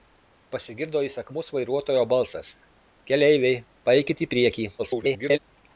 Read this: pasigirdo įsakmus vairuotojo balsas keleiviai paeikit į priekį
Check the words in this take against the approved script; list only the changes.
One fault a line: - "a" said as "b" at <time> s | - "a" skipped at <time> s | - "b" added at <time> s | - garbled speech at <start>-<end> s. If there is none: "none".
- garbled speech at 4.8-5.4 s